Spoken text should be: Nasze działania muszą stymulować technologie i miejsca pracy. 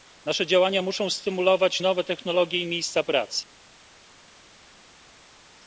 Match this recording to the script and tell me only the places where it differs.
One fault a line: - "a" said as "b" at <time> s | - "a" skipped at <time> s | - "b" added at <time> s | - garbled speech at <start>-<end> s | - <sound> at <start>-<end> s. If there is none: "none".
- "nowe" added at 1.8 s